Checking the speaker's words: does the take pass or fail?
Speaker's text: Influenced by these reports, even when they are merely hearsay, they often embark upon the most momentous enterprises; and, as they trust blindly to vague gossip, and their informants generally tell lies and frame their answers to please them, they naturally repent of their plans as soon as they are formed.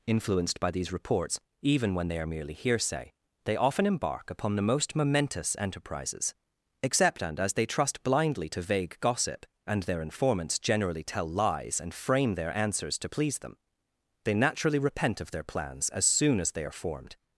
fail